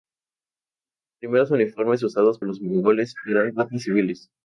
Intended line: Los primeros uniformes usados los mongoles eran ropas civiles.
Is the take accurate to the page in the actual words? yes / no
yes